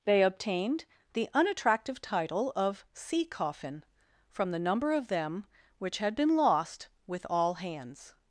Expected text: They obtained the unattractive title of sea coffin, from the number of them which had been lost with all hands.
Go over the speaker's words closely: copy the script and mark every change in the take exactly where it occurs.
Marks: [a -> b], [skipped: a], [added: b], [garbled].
They obtained the unattractive title of sea coffin, from the number of them which had been lost with all hands.